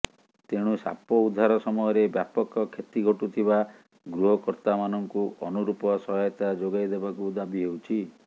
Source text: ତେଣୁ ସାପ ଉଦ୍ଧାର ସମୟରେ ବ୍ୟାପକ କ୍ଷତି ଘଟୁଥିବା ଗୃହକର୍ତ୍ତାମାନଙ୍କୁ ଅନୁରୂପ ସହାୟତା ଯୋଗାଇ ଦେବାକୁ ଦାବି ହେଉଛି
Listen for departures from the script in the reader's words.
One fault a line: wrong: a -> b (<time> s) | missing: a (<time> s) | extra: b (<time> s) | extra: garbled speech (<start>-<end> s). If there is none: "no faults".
no faults